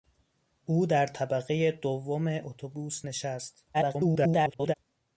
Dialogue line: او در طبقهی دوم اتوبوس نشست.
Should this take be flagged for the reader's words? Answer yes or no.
yes